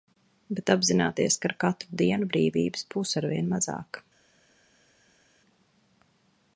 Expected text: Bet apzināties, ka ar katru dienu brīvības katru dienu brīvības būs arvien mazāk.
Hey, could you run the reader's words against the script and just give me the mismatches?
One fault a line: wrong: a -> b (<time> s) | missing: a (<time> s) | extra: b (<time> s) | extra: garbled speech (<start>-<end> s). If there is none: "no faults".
missing: katru dienu brīvības (2.9 s)